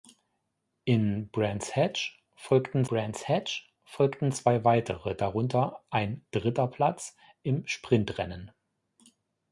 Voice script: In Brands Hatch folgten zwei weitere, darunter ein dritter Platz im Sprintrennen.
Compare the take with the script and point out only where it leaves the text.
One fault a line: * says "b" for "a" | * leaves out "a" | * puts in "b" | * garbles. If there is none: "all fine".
* puts in "Brands Hatch folgten"